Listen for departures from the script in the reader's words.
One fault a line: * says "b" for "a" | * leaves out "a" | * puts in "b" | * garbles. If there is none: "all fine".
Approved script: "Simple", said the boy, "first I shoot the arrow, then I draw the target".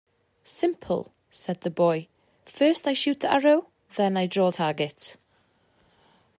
* leaves out "the"